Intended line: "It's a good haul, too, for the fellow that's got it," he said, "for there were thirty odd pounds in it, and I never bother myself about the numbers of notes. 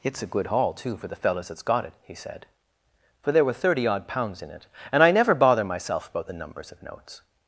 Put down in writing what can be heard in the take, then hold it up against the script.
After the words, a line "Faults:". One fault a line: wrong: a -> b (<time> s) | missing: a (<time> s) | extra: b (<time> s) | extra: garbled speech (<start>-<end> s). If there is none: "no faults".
"It's a good haul, too, for the fellows that's got it," he said, "for there were thirty odd pounds in it, and I never bother myself about the numbers of notes.
Faults:
wrong: fellow -> fellows (1.2 s)